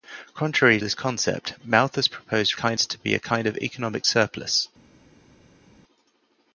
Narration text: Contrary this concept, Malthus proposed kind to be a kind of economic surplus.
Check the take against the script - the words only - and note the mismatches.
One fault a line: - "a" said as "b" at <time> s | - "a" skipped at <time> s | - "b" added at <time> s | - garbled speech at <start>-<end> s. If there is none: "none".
none